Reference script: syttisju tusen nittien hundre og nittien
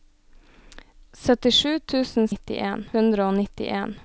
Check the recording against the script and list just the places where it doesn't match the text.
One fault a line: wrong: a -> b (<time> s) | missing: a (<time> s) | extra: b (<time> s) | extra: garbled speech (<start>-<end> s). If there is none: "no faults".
no faults